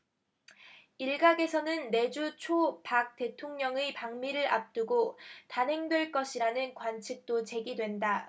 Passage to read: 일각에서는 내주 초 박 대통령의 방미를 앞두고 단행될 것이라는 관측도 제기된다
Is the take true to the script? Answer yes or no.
yes